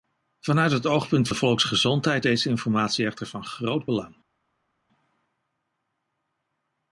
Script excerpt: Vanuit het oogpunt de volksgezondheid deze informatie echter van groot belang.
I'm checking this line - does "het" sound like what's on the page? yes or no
yes